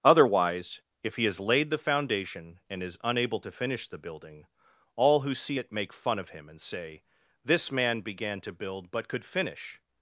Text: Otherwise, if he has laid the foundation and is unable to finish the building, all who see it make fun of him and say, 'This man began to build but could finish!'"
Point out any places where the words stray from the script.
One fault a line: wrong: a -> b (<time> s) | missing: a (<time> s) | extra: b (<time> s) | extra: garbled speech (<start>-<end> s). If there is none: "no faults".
no faults